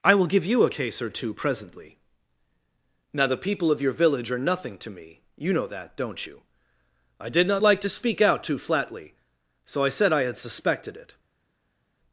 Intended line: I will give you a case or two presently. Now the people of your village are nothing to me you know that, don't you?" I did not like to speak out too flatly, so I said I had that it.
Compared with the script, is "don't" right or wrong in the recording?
right